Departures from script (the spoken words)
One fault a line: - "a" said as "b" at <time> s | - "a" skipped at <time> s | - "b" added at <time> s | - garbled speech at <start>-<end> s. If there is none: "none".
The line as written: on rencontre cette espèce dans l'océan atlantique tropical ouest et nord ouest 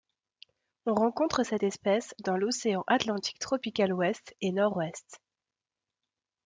none